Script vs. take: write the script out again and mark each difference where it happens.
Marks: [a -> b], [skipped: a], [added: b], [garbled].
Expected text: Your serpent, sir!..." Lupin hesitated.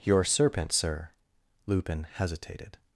Your serpent, sir!..." Lupin hesitated.